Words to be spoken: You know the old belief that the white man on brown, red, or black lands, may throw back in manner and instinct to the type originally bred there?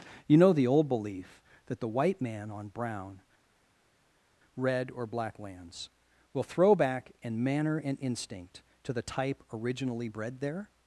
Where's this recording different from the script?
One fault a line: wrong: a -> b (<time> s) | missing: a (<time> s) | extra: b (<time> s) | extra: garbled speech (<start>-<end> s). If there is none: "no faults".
wrong: may -> will (6.3 s)